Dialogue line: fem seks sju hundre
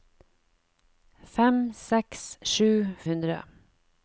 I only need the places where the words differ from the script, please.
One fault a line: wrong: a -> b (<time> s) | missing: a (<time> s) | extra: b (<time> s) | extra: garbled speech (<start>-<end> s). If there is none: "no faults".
no faults